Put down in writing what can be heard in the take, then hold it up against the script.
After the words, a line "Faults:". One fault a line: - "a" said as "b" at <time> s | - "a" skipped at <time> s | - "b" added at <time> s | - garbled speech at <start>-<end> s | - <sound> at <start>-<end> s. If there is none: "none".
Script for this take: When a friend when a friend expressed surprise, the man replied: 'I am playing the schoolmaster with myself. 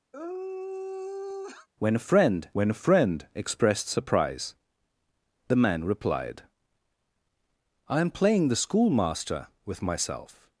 When a friend when a friend expressed surprise, the man replied: 'I am playing the schoolmaster with myself.
Faults:
- sigh at 0.1-1.7 s